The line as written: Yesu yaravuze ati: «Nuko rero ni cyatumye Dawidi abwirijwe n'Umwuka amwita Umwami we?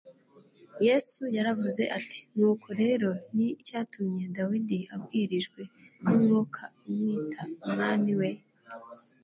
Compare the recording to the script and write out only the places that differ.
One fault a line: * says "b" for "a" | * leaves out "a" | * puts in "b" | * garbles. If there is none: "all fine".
all fine